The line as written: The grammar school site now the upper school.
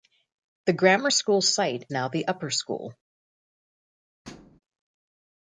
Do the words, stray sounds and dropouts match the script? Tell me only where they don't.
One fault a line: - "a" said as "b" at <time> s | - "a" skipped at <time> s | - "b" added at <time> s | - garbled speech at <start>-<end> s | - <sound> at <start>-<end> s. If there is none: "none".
- thud at 4.2-4.6 s